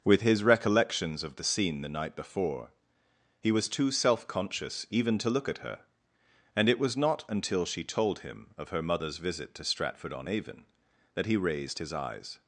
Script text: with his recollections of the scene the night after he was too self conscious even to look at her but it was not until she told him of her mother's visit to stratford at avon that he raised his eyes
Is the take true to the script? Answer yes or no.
no